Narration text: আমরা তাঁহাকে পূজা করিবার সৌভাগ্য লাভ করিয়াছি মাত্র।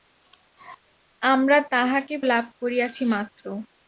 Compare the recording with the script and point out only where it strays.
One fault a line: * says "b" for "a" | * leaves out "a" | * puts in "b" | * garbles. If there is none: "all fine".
* leaves out "পূজা করিবার সৌভাগ্য"